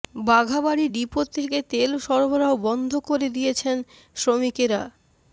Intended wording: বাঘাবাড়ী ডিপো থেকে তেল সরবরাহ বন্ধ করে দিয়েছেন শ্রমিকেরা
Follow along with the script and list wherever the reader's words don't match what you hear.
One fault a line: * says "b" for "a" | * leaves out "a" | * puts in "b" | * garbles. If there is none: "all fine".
all fine